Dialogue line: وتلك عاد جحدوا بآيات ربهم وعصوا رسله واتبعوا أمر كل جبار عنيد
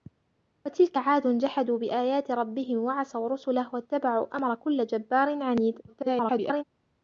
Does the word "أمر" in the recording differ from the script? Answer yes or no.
no